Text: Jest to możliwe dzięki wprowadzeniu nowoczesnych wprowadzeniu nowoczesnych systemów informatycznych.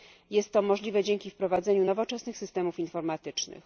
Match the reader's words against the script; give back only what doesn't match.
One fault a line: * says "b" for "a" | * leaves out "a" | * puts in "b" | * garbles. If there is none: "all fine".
* leaves out "wprowadzeniu nowoczesnych"